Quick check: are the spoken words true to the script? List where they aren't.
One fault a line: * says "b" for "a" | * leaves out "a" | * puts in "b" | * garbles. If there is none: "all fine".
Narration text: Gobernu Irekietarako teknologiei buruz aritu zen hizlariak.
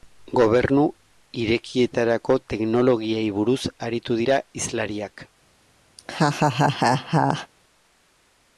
* says "dira" for "zen"